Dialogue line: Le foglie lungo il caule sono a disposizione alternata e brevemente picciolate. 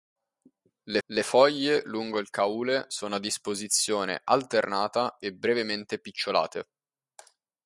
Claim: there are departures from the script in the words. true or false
true